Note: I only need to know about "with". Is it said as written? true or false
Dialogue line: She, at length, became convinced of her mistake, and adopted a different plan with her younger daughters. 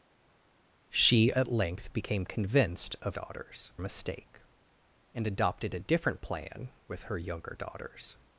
true